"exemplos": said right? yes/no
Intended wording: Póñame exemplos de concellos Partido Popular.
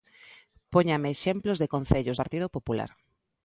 yes